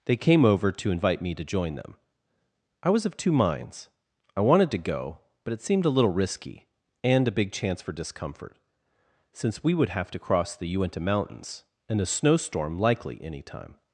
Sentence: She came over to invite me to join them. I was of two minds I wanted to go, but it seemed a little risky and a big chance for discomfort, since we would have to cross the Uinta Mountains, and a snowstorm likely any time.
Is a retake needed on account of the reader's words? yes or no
yes